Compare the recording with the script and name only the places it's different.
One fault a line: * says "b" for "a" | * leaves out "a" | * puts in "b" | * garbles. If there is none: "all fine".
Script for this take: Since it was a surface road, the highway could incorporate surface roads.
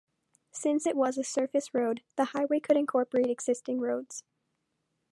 * says "existing" for "surface"